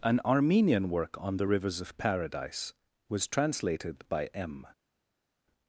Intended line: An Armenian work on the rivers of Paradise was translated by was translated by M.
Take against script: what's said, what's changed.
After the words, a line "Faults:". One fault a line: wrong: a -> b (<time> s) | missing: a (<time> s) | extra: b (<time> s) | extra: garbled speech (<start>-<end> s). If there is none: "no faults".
An Armenian work on the rivers of Paradise was translated by M.
Faults:
missing: was translated by (4.3 s)